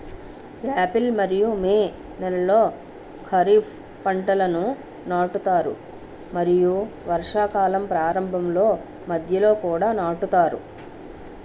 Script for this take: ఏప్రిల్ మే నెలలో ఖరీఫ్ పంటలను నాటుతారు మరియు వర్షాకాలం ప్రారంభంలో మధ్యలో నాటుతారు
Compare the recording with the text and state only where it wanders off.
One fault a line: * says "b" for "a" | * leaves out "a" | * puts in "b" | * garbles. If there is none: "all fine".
* puts in "మరియు"
* puts in "కూడా"